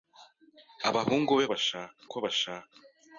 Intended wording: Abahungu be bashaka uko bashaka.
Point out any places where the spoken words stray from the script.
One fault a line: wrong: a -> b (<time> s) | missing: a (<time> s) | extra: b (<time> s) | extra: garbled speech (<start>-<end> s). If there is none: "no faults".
no faults